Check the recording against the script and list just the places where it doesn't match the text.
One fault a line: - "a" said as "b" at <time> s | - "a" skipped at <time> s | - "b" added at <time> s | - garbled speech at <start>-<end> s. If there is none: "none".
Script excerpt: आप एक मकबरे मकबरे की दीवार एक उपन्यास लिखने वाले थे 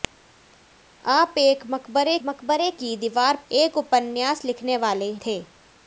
none